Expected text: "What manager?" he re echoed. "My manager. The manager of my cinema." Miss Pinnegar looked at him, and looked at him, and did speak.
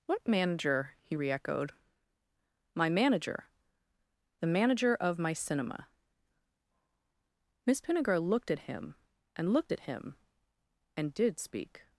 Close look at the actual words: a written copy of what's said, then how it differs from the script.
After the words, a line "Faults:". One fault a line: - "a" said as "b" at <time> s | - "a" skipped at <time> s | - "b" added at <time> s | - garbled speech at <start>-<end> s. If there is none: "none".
"What manager?" he re echoed. "My manager. The manager of my cinema." Miss Pinnegar looked at him, and looked at him, and did speak.
Faults:
none